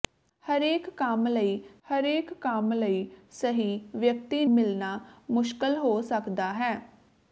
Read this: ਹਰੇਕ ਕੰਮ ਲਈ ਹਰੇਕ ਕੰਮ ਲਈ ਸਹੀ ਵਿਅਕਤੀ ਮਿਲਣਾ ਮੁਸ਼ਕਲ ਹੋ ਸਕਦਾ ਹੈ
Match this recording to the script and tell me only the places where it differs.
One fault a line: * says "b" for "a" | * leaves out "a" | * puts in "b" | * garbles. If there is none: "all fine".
all fine